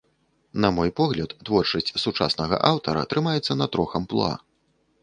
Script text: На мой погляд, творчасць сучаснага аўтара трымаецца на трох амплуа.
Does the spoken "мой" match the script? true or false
true